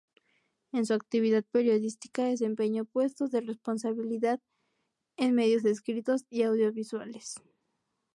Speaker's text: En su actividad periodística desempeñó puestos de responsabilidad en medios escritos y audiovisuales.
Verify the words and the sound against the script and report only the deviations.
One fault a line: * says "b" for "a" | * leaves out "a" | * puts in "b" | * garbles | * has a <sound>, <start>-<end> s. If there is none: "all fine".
all fine